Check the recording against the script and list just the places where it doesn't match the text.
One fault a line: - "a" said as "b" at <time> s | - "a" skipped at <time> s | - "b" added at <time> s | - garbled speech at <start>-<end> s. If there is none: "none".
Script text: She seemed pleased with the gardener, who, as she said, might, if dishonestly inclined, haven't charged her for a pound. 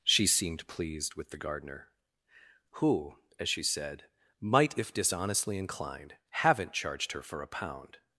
none